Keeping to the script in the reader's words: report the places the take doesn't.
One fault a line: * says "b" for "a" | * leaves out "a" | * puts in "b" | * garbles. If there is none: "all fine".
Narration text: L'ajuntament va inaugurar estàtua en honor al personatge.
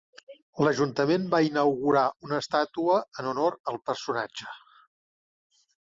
* puts in "una"